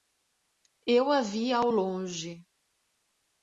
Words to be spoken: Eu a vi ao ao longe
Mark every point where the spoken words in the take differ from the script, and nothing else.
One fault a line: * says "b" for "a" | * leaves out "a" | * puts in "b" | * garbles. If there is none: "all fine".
* leaves out "ao"